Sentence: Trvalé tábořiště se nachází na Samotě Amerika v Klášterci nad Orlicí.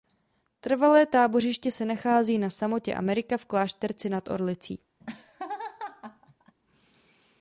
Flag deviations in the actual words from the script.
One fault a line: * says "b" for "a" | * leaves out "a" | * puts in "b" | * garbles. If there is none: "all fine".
all fine